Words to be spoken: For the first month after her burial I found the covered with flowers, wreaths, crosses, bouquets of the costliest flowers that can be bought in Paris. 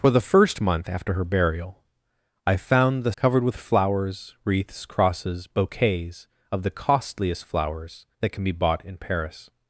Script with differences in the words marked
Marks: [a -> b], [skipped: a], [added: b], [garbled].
For the first month after her burial I found the covered with flowers, wreaths, crosses, bouquets of the costliest flowers that can be bought in Paris.